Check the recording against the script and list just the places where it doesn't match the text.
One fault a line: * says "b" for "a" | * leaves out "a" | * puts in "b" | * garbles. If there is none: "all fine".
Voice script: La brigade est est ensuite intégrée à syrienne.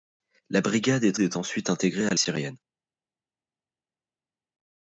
all fine